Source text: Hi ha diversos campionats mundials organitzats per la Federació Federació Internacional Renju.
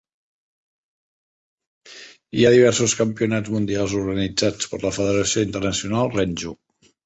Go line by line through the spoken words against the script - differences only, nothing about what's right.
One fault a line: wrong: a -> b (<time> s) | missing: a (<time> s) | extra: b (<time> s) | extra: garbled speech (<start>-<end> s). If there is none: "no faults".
missing: Federació (5.5 s)